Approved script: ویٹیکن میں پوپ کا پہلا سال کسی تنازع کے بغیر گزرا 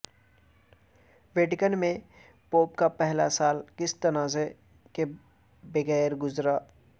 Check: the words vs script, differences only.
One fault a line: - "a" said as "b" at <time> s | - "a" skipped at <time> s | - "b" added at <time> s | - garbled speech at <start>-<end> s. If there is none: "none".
none